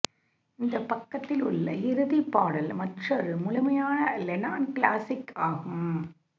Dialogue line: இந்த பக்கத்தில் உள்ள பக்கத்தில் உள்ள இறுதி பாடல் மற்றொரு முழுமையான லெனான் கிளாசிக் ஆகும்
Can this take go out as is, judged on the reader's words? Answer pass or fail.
fail